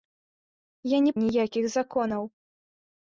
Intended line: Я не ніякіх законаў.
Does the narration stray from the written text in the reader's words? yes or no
no